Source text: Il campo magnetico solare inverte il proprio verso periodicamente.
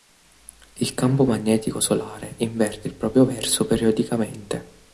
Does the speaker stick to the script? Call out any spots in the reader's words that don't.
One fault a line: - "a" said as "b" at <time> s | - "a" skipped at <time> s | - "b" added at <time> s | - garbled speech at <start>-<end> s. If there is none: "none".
none